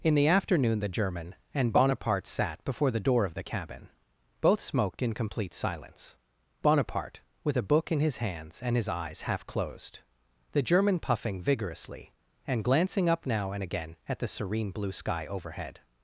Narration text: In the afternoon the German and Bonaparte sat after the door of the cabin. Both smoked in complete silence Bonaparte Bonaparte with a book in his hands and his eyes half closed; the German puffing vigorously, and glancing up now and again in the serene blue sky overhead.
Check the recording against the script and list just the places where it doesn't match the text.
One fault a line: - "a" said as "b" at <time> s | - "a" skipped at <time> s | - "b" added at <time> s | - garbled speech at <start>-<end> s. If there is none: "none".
- "after" said as "before" at 2.6 s
- "Bonaparte" skipped at 7.2 s
- "in" said as "at" at 14.1 s